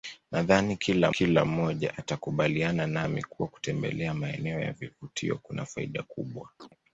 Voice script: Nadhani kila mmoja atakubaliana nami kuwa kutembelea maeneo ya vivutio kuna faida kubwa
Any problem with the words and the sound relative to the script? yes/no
yes